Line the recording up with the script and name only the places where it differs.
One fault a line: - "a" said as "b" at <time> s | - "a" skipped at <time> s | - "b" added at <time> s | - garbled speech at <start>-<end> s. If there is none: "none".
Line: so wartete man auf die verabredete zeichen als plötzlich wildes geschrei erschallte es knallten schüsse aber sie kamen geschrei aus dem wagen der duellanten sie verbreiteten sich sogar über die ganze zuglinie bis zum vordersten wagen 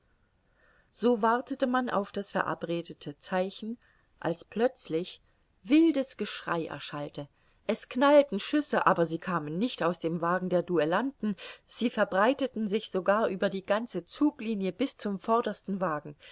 - "die" said as "das" at 2.1 s
- "geschrei" said as "nicht" at 9.6 s